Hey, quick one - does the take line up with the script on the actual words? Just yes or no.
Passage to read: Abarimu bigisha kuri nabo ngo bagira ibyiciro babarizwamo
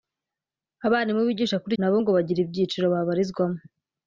yes